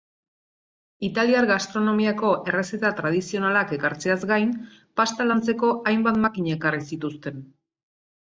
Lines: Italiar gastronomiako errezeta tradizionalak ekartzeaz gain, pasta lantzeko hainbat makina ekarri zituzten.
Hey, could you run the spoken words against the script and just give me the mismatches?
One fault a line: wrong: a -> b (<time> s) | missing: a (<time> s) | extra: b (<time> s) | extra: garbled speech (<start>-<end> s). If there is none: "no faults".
no faults